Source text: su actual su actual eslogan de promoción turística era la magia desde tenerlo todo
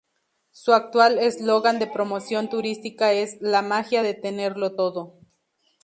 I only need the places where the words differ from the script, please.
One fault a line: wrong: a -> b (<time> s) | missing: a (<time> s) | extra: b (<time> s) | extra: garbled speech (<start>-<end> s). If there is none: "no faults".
missing: su actual (1.2 s)
wrong: era -> es (3.1 s)
wrong: desde -> de (4.0 s)